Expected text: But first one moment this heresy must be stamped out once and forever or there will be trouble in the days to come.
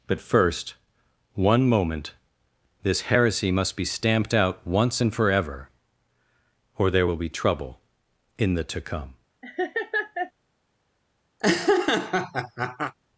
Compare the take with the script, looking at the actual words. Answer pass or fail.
fail